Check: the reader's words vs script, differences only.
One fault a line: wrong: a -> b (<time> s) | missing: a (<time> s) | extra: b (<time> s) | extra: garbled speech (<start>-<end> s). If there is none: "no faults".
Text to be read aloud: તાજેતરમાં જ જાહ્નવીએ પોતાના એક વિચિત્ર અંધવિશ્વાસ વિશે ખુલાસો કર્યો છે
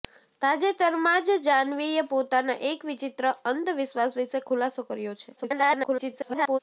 extra: garbled speech (5.4-6.6 s)